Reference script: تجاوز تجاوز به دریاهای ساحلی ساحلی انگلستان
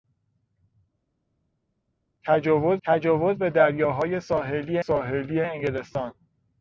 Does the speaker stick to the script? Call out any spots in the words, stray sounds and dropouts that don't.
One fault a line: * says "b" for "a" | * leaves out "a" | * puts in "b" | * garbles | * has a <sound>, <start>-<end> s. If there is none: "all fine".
all fine